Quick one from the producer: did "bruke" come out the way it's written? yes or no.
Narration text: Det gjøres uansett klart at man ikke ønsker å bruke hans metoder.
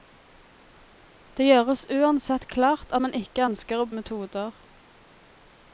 no